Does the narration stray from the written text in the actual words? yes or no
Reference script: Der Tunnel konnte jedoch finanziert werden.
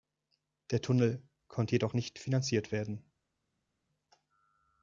yes